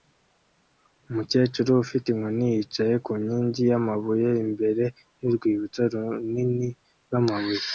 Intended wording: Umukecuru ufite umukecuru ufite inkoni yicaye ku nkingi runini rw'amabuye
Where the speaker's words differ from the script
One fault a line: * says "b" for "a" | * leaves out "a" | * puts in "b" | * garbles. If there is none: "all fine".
* leaves out "umukecuru ufite"
* puts in "y'amabuye imbere y'urwibutso"